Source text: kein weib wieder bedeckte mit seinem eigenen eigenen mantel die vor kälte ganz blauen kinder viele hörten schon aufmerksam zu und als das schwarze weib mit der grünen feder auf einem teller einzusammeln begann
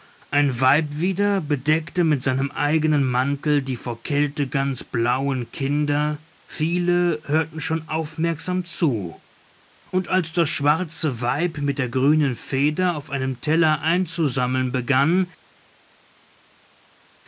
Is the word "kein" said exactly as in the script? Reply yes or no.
no